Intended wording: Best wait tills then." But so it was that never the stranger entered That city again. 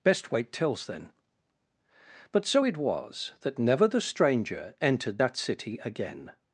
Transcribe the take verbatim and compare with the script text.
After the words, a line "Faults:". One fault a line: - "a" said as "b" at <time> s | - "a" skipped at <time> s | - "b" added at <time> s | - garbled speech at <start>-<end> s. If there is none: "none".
Best wait tills then." But so it was that never the stranger entered That city again.
Faults:
none